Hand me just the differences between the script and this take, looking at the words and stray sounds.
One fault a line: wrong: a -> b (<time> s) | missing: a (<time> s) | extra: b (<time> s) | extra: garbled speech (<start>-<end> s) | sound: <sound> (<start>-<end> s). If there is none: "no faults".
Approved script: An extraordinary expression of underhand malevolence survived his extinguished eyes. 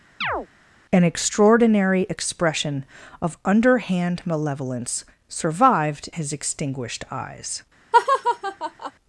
sound: chirp (0.2-0.5 s)
sound: laugh (7.9-8.9 s)